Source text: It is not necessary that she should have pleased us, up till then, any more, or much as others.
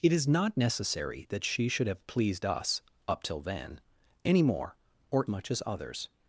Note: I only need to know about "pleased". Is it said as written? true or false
true